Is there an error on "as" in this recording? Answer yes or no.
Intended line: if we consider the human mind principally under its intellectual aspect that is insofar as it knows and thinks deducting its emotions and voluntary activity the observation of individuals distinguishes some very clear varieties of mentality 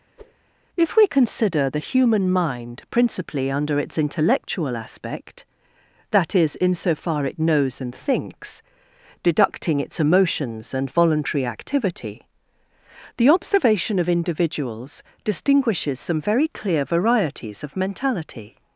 yes